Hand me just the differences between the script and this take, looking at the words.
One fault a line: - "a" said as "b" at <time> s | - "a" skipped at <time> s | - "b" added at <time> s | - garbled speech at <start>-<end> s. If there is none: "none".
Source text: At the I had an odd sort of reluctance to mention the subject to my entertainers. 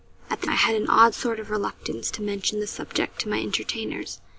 none